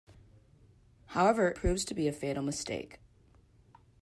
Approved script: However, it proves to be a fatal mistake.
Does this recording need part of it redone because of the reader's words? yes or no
yes